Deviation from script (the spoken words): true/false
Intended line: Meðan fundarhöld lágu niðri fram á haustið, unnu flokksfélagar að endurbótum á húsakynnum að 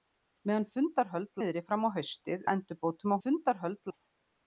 true